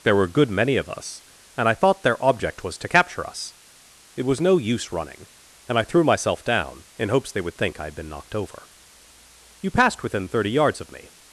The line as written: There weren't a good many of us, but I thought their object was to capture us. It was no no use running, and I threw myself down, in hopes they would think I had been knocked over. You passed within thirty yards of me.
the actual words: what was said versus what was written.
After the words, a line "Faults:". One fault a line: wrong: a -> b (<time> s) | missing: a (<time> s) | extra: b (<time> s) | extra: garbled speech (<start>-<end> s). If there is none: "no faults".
There were a good many of us, and I thought their object was to capture us. It was no use running, and I threw myself down, in hopes they would think I had been knocked over. You passed within thirty yards of me.
Faults:
wrong: weren't -> were (0.1 s)
wrong: but -> and (1.6 s)
missing: no (4.6 s)